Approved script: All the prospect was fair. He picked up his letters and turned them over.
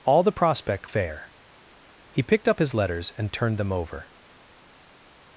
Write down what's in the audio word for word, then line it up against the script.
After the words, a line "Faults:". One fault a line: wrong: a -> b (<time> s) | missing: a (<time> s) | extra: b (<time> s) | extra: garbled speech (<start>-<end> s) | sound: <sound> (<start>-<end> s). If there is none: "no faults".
All the prospect fair. He picked up his letters and turned them over.
Faults:
missing: was (0.9 s)